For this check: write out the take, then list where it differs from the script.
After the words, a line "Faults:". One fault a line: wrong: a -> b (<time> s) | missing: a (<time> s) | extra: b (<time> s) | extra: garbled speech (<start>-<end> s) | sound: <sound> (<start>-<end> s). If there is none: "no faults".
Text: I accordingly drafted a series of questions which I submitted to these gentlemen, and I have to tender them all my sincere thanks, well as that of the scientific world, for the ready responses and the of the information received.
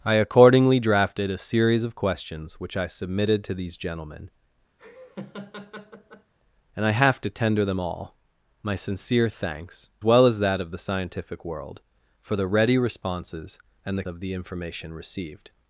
I accordingly drafted a series of questions which I submitted to these gentlemen, and I have to tender them all my sincere thanks, well as that of the scientific world, for the ready responses and the of the information received.
Faults:
sound: laugh (4.8-6.3 s)